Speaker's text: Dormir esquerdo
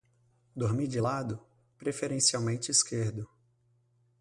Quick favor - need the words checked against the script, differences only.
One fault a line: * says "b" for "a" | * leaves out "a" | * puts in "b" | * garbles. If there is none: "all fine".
* puts in "de lado preferencialmente"